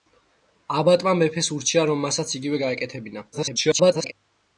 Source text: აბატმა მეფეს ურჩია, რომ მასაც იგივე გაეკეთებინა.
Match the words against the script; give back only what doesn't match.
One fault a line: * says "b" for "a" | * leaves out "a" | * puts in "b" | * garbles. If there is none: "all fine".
* garbles